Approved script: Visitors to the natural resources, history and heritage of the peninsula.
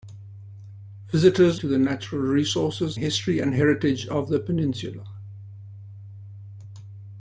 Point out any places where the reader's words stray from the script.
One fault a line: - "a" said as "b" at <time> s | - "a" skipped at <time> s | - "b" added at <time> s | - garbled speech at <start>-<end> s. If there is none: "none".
none